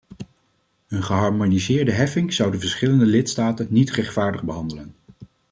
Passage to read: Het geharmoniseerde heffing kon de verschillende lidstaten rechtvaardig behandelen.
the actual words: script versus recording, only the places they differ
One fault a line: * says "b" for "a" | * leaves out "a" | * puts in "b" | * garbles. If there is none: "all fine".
* says "Een" for "Het"
* says "zou" for "kon"
* puts in "niet"